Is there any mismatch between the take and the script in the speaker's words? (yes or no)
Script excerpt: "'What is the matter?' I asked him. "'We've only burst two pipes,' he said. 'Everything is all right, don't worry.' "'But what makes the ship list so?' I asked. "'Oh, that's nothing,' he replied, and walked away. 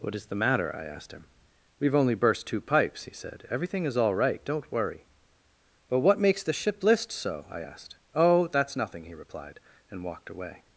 no